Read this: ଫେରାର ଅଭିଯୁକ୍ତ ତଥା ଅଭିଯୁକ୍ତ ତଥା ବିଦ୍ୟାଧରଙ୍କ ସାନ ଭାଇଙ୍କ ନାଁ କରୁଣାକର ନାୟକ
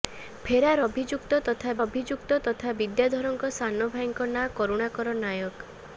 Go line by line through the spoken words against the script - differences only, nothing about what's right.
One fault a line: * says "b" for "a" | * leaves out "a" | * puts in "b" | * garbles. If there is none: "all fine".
all fine